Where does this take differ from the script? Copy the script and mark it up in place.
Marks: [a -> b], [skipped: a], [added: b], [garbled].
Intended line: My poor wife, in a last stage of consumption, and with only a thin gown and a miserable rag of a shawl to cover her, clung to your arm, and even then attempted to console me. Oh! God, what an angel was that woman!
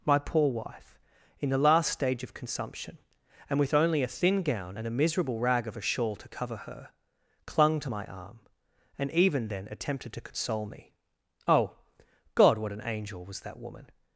My poor wife, in [a -> the] last stage of consumption, and with only a thin gown and a miserable rag of a shawl to cover her, clung to [your -> my] arm, and even then attempted to console me. Oh! God, what an angel was that woman!